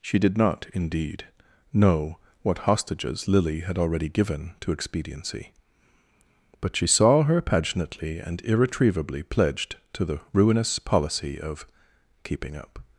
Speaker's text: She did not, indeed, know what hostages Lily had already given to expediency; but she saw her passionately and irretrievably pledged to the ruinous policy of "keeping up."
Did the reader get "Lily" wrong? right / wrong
right